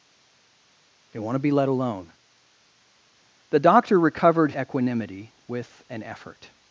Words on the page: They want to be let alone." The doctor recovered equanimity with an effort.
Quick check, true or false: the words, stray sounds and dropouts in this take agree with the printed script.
true